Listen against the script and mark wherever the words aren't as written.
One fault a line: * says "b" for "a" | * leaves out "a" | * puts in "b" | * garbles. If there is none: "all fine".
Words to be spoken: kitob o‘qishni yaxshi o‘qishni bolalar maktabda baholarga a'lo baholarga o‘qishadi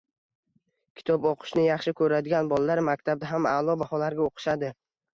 * says "ko‘radigan" for "o‘qishni"
* says "ham" for "baholarga"